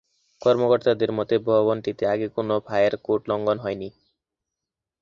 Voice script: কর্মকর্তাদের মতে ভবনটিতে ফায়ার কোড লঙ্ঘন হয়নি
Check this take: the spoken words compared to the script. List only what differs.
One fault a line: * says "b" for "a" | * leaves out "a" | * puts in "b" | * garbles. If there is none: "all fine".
* puts in "আগে কোনো"